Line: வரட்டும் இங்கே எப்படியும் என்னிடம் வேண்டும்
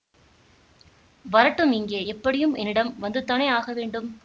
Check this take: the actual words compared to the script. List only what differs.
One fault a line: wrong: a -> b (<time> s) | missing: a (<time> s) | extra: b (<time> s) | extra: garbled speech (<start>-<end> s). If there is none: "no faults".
extra: வந்துதானே ஆக (3.0 s)